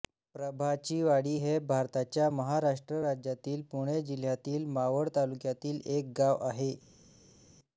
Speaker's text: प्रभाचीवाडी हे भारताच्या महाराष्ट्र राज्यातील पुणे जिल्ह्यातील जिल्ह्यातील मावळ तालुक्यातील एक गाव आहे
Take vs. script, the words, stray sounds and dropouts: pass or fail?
fail